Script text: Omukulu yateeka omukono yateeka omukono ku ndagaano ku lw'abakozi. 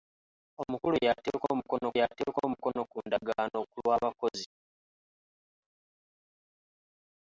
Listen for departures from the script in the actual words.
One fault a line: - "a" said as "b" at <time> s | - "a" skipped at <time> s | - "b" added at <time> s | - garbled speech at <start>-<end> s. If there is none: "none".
none